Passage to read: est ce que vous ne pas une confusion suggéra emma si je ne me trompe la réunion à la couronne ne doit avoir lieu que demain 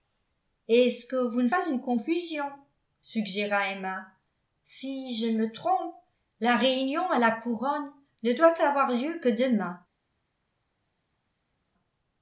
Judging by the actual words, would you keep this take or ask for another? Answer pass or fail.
pass